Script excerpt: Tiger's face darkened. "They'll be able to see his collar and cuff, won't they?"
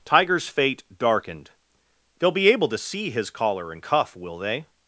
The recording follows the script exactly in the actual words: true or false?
false